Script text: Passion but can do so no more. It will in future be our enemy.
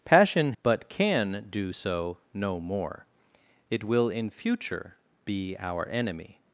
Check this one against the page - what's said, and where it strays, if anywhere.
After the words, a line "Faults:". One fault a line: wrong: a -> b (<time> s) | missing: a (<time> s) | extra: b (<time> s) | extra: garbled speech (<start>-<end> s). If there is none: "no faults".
Passion but can do so no more. It will in future be our enemy.
Faults:
no faults